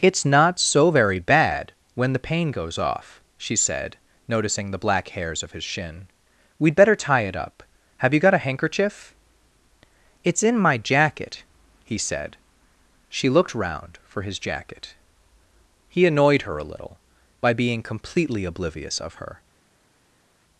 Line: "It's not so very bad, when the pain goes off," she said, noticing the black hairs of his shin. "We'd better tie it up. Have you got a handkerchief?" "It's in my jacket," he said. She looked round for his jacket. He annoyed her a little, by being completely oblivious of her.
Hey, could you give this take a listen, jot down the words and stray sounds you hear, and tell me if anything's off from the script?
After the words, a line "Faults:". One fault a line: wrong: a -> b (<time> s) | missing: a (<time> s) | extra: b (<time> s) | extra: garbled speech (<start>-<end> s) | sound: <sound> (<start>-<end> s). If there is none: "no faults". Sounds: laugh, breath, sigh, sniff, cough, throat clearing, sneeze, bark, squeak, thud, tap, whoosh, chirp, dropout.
"It's not so very bad, when the pain goes off," she said, noticing the black hairs of his shin. "We'd better tie it up. Have you got a handkerchief?" "It's in my jacket," he said. She looked round for his jacket. He annoyed her a little, by being completely oblivious of her.
Faults:
no faults